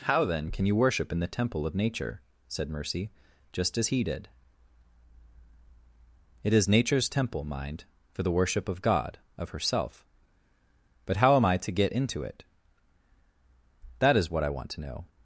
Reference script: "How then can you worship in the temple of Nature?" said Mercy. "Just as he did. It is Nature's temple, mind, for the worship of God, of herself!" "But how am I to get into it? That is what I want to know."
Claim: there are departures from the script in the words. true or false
false